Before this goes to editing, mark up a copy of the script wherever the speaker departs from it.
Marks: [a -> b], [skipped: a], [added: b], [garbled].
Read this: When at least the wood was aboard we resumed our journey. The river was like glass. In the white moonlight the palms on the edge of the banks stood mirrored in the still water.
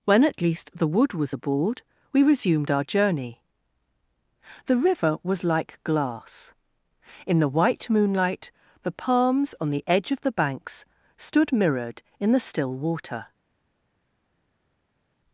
When at least the wood was aboard we resumed our journey. The river was like glass. In the white moonlight the palms on the edge of the banks stood mirrored in the still water.